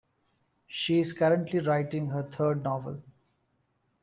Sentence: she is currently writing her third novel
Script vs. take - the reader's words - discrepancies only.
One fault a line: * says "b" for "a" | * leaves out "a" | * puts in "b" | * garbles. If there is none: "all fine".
all fine